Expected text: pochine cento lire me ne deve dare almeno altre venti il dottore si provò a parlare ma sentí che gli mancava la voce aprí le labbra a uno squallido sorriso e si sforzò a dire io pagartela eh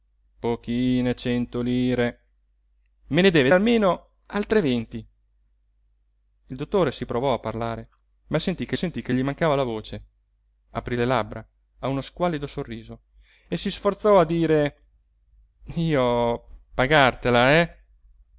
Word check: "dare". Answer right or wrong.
wrong